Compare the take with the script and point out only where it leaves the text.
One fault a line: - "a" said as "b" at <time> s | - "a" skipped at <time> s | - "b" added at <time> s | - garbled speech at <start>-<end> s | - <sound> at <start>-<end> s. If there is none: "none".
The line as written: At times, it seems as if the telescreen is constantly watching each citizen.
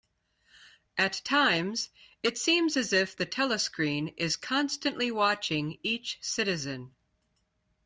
none